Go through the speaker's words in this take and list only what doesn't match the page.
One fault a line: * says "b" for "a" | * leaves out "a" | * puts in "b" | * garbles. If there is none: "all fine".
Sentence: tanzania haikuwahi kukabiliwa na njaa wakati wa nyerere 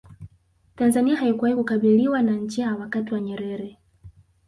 all fine